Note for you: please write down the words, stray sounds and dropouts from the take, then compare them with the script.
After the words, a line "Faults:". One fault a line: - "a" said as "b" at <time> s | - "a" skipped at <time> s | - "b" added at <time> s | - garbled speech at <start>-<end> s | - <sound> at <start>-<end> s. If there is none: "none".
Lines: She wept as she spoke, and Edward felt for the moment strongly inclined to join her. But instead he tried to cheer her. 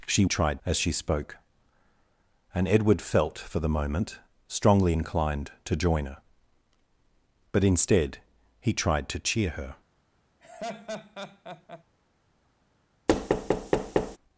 She tried as she spoke, and Edward felt for the moment strongly inclined to join her. But instead he tried to cheer her.
Faults:
- "wept" said as "tried" at 0.3 s
- laugh at 10.4-11.8 s
- thud at 13.1-14.2 s